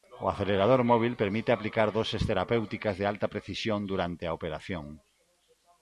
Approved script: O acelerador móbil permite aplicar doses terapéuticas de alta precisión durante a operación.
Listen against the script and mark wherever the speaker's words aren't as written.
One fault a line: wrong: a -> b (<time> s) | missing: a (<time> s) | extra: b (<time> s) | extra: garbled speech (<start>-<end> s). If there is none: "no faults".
no faults